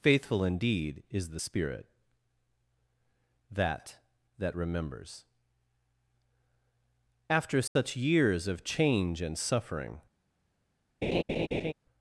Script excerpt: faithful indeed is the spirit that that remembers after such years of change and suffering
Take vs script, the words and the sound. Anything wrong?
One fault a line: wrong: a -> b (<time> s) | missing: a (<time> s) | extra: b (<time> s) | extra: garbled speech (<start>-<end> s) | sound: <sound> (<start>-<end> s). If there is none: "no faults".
sound: dropout (7.7-7.8 s)
sound: laugh (11.0-11.7 s)